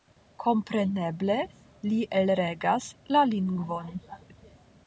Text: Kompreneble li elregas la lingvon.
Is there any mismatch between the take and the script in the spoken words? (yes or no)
no